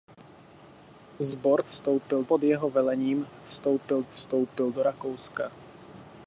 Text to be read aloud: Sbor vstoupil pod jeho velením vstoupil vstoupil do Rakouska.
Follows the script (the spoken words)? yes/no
yes